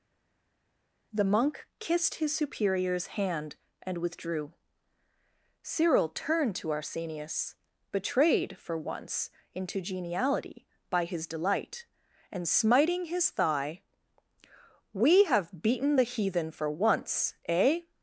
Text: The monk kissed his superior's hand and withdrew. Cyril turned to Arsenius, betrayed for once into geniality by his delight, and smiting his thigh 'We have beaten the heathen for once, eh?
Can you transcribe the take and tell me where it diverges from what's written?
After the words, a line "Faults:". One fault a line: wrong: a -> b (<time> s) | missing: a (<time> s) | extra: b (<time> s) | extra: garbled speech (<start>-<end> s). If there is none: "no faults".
The monk kissed his superior's hand and withdrew. Cyril turned to Arsenius, betrayed for once into geniality by his delight, and smiting his thigh 'We have beaten the heathen for once, eh?
Faults:
no faults